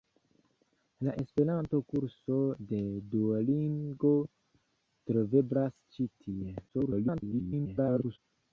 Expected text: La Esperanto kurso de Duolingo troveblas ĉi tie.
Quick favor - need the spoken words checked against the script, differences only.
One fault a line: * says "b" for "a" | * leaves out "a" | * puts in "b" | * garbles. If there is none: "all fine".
* garbles